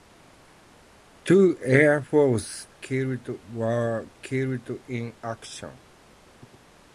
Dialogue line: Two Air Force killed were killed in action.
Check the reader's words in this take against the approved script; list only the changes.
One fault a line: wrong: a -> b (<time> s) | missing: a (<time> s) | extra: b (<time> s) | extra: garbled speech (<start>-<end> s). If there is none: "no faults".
no faults